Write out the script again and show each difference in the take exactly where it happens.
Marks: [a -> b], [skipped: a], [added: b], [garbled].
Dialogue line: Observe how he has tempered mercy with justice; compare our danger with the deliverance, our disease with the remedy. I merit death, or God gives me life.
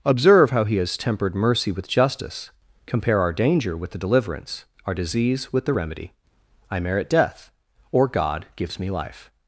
Observe how he has tempered mercy with justice; compare our danger with the deliverance, our disease with the remedy. I merit death, or God gives me life.